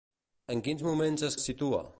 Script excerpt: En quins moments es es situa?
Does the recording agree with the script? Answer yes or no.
yes